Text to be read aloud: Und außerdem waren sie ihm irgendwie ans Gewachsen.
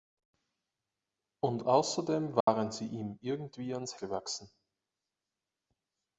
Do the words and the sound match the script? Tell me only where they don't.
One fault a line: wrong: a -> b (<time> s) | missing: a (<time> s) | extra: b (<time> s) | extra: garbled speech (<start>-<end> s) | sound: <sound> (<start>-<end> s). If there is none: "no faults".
sound: dropout (2.4-2.5 s)